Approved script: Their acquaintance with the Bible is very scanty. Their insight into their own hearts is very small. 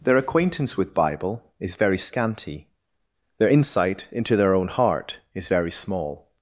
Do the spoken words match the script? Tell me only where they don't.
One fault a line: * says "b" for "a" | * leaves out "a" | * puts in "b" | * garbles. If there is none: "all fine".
* leaves out "the"
* says "heart" for "hearts"